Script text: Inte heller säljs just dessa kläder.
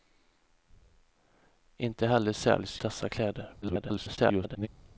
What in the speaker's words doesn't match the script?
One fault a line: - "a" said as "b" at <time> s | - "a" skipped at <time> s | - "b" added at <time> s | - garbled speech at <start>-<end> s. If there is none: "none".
- "just" skipped at 2.8 s
- garbled speech at 3.6-4.7 s